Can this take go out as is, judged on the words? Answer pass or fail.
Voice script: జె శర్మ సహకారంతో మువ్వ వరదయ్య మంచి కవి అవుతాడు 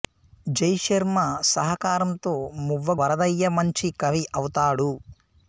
pass